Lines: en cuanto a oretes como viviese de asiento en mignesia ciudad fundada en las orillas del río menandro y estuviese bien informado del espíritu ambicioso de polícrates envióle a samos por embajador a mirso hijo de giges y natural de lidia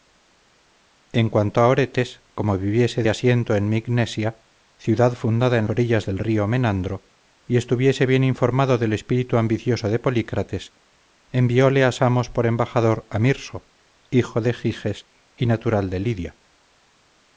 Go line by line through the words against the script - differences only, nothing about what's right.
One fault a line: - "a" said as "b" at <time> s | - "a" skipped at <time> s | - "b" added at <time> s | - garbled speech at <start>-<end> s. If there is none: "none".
- "de" skipped at 3.0 s
- "las" skipped at 5.7 s